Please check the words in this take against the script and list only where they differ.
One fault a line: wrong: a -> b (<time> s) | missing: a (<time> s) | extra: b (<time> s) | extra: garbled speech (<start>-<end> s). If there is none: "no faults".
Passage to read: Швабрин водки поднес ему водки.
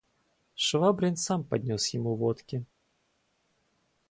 wrong: водки -> сам (1.1 s)